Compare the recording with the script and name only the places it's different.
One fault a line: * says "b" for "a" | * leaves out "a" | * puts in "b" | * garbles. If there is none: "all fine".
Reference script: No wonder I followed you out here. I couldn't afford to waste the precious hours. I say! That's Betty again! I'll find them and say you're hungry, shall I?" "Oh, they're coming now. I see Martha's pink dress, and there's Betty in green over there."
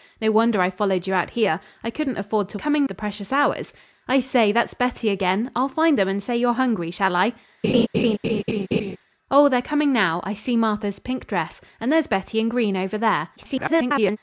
* says "coming" for "waste"
* garbles